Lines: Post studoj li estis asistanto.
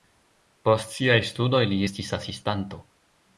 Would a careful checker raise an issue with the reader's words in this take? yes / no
yes